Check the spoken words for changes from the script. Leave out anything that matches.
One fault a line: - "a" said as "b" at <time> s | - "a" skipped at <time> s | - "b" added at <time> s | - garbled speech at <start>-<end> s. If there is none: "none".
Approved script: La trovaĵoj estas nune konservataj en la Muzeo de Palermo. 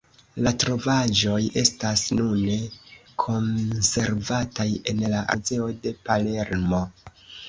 none